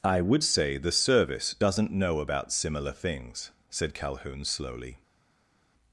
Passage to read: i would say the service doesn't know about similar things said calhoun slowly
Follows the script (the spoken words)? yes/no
yes